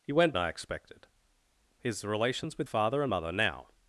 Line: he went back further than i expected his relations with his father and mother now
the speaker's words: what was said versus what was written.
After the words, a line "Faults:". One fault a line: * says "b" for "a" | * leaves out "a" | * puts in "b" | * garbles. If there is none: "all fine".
he went i expected his relations with father and mother now
Faults:
* leaves out "back further than"
* leaves out "his"